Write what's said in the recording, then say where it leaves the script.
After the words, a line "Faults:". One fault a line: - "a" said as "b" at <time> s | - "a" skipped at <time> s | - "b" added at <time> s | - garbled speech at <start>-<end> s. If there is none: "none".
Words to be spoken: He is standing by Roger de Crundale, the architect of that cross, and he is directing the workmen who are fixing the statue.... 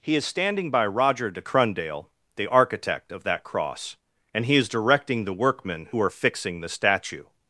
He is standing by Roger de Crundale, the architect of that cross, and he is directing the workmen who are fixing the statue....
Faults:
none